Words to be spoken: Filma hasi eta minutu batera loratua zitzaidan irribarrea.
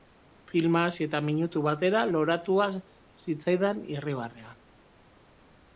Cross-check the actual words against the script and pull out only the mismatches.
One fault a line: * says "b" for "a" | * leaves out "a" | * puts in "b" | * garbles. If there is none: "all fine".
all fine